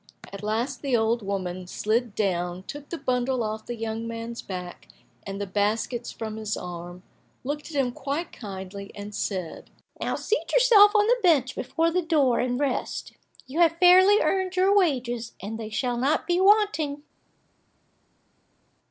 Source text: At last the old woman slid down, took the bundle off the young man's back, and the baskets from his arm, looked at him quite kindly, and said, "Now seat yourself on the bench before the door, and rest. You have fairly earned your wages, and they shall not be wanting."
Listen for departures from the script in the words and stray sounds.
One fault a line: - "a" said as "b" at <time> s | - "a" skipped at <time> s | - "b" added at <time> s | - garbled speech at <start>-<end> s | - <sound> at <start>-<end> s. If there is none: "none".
none